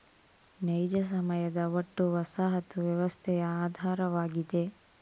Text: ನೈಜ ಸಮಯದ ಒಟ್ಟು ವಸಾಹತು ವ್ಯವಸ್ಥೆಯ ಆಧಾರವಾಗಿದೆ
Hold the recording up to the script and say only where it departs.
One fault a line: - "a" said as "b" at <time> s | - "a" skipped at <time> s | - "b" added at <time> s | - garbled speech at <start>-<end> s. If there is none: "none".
none